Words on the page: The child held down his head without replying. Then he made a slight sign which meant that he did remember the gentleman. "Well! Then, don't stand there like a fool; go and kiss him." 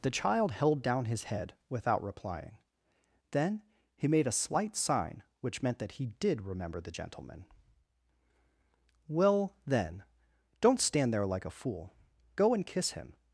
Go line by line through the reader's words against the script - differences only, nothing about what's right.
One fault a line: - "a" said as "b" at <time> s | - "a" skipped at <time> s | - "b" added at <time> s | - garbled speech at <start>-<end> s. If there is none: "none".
none